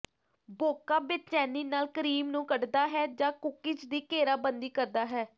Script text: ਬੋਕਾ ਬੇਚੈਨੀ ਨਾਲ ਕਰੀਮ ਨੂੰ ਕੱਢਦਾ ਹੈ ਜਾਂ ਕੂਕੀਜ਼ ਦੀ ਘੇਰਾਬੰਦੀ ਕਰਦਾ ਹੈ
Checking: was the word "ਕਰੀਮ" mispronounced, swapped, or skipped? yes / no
no